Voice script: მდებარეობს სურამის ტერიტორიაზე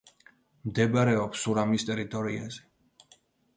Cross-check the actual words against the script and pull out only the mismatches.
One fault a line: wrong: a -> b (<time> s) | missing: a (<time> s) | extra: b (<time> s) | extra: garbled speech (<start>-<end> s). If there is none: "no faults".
no faults